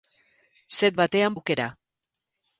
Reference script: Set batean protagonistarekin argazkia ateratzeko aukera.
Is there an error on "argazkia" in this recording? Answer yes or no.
yes